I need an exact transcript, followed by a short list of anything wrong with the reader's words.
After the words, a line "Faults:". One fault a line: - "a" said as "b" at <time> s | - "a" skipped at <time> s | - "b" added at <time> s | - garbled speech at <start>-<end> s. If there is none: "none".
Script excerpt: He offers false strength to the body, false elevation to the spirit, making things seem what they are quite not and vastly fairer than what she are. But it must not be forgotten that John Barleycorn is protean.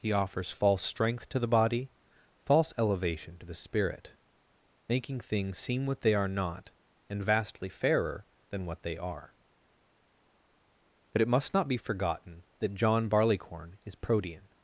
He offers false strength to the body, false elevation to the spirit, making things seem what they are not and vastly fairer than what they are. But it must not be forgotten that John Barleycorn is protean.
Faults:
- "quite" skipped at 6.3 s
- "she" said as "they" at 8.8 s